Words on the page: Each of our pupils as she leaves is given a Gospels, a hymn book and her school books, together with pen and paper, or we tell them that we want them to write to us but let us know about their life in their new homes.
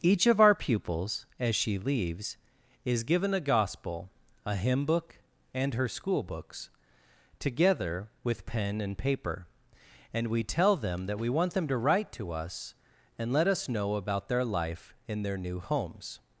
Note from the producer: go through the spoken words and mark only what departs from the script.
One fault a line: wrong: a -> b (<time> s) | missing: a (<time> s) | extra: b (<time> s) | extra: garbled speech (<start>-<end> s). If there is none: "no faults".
wrong: Gospels -> Gospel (3.4 s)
wrong: or -> and (10.1 s)
wrong: but -> and (13.2 s)